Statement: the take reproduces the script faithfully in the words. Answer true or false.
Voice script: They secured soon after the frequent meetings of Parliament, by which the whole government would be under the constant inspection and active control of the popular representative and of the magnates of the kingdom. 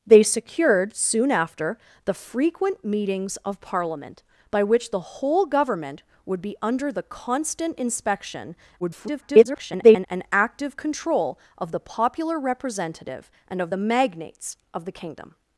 false